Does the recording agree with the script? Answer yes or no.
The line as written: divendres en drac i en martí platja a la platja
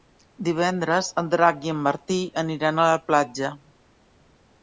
no